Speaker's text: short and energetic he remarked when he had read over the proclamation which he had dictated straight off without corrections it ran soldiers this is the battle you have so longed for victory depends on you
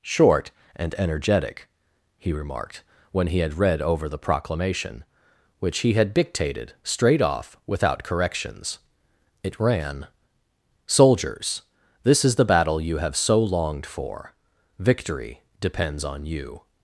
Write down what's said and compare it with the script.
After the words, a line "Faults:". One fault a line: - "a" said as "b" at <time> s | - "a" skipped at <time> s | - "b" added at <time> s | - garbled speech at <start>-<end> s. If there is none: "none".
short and energetic he remarked when he had read over the proclamation which he had dictated straight off without corrections it ran soldiers this is the battle you have so longed for victory depends on you
Faults:
none